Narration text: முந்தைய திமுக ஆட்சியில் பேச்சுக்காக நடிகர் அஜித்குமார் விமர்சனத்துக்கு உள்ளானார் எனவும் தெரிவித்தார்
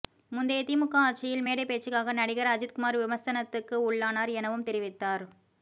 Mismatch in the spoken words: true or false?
true